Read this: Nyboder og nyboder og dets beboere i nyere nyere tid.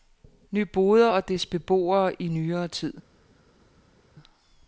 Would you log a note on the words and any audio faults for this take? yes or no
yes